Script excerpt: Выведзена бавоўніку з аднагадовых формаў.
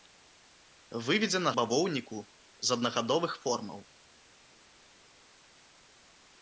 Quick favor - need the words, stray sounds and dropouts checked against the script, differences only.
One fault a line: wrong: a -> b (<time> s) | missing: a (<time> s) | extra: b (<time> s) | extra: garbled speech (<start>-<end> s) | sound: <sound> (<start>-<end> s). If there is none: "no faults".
no faults